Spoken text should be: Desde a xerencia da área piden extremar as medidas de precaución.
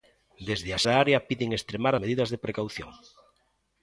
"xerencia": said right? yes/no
no